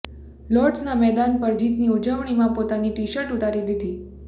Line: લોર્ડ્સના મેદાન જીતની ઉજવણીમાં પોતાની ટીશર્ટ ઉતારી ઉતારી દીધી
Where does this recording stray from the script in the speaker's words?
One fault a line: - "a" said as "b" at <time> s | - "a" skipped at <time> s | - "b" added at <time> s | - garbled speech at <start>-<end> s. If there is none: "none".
- "પર" added at 1.4 s
- "ઉતારી" skipped at 3.7 s